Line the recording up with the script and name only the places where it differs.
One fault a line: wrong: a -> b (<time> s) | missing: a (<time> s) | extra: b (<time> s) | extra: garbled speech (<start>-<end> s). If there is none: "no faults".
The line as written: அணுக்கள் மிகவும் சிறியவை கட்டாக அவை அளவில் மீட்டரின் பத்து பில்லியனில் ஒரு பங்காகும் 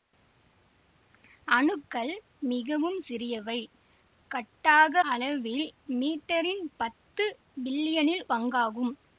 missing: அவை (5.0 s)
missing: ஒரு (8.3 s)